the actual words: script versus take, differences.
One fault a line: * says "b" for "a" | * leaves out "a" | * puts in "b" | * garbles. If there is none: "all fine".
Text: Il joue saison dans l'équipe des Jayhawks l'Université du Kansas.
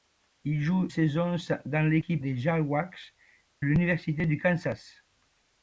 all fine